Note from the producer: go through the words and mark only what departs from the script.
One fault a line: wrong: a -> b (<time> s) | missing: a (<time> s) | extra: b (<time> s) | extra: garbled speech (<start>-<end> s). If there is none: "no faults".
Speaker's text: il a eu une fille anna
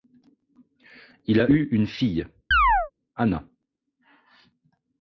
no faults